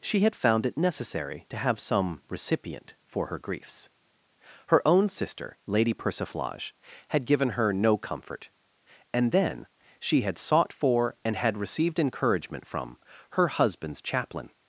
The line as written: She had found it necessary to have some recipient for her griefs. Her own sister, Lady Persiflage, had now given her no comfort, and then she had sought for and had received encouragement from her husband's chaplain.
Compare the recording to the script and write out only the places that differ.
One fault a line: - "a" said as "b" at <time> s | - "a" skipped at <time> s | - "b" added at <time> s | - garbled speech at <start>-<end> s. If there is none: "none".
- "now" skipped at 7.3 s